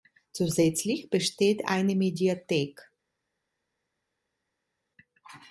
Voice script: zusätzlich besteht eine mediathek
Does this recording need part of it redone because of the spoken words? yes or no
no